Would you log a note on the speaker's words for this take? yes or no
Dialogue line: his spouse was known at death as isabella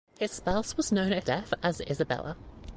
no